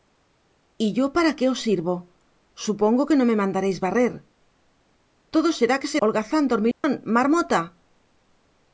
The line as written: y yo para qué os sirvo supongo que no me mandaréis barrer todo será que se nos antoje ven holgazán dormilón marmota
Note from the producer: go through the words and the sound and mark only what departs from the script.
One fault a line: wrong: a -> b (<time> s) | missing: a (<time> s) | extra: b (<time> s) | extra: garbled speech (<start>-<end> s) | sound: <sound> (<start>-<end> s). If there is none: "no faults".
missing: nos antoje ven (6.0 s)
sound: dropout (6.7-6.8 s)